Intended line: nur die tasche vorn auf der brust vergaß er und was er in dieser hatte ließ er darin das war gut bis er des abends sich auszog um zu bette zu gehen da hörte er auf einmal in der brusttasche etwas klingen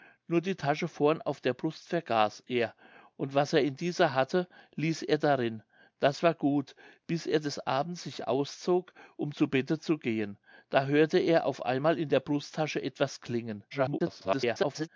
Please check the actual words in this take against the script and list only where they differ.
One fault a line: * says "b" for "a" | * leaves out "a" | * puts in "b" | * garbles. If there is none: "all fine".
* garbles